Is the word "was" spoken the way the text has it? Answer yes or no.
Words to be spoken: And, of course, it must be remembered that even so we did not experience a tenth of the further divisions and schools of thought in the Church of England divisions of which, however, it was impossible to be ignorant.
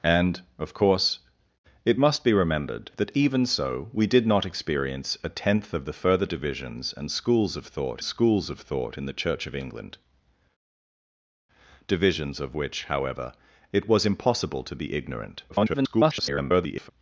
yes